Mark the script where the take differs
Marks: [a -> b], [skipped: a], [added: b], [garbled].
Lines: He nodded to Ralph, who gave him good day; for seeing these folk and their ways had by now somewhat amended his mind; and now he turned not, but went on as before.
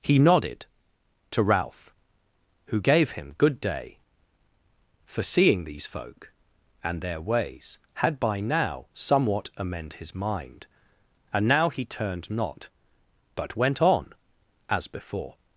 He nodded to Ralph, who gave him good day; for seeing these folk and their ways had by now somewhat [amended -> amend] his mind; and now he turned not, but went on as before.